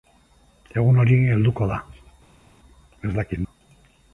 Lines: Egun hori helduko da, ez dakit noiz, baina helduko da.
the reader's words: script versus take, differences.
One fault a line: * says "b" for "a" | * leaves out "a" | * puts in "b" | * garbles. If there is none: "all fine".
* leaves out "noiz baina helduko"